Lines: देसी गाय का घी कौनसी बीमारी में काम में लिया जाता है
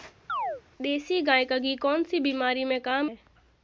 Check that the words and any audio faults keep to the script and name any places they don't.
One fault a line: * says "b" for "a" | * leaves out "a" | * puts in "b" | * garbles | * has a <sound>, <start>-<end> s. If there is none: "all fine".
* has a chirp, 0.3-0.6 s
* leaves out "में लिया जाता"